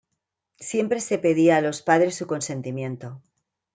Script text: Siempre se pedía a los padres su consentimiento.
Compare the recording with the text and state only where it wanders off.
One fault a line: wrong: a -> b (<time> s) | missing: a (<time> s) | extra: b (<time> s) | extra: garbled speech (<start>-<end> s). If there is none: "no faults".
no faults